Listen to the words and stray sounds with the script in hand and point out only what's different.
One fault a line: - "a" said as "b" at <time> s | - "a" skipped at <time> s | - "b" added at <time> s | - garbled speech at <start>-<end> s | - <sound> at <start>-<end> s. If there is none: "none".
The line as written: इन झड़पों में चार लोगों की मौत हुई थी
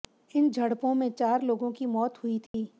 - dropout at 2.5-2.5 s